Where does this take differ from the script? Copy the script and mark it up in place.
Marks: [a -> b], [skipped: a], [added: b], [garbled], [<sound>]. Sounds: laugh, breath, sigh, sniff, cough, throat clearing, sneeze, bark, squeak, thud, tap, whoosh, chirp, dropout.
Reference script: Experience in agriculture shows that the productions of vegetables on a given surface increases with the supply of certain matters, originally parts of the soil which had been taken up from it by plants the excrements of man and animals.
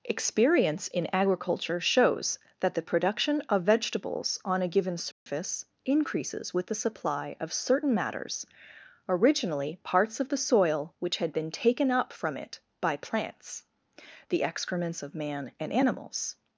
Experience in agriculture shows that the [productions -> production] of vegetables on a given surface [dropout] increases with the supply of certain matters, originally parts of the soil which had been taken up from it by plants the excrements of man and animals.